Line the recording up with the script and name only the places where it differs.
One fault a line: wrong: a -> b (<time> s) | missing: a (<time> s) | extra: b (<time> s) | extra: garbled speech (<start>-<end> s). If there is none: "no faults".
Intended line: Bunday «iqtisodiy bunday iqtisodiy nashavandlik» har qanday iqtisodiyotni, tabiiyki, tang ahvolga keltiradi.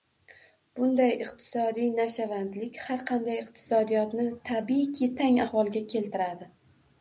missing: bunday iqtisodiy (1.9 s)